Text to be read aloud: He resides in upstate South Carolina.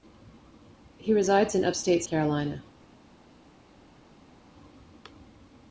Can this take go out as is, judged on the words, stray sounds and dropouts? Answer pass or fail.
fail